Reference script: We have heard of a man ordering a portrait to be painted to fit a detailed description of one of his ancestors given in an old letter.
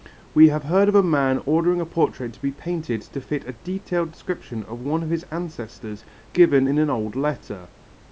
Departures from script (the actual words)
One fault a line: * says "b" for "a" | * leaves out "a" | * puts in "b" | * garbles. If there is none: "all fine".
all fine